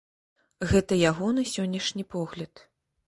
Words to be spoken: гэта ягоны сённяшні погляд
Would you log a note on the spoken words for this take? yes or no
no